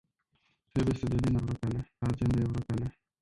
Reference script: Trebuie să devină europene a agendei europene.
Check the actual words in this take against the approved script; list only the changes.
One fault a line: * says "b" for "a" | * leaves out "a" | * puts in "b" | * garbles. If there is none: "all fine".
all fine